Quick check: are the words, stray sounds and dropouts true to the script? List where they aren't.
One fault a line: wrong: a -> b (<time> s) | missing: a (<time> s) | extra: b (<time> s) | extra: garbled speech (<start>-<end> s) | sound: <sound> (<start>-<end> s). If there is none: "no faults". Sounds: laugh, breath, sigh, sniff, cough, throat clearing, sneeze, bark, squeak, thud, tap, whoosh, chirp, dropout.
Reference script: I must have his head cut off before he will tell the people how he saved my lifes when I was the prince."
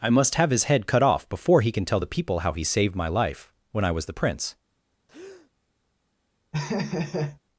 wrong: will -> can (1.7 s)
wrong: lifes -> life (3.1 s)
sound: breath (5.1-5.5 s)
sound: laugh (6.5-7.4 s)